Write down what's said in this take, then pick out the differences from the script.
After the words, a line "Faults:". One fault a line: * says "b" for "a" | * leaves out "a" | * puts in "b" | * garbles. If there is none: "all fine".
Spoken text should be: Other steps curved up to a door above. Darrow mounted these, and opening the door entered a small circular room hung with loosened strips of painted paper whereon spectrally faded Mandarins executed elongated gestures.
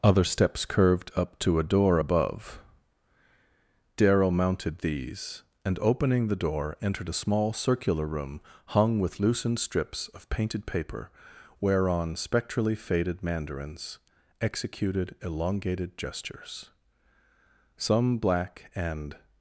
Other steps curved up to a door above. Darrow mounted these, and opening the door entered a small circular room hung with loosened strips of painted paper whereon spectrally faded Mandarins executed elongated gestures. Some black and
Faults:
* puts in "Some black and"